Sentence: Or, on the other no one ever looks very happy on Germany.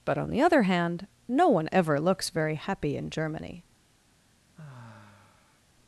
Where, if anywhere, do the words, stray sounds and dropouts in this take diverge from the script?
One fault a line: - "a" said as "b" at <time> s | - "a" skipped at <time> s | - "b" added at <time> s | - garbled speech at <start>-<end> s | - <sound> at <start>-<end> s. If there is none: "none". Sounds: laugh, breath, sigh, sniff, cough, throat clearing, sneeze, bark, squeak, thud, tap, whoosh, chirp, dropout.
- "Or" said as "But" at 0.0 s
- "hand" added at 0.6 s
- "on" said as "in" at 3.0 s
- sigh at 4.5-5.6 s